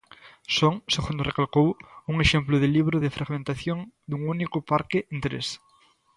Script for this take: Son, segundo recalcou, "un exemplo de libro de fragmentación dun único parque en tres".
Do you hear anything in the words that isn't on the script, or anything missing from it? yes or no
no